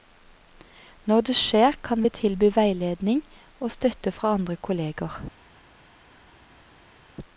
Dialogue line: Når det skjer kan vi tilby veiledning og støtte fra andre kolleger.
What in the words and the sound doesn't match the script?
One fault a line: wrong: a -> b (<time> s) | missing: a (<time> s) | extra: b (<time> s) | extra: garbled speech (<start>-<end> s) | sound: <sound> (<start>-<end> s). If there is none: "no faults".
no faults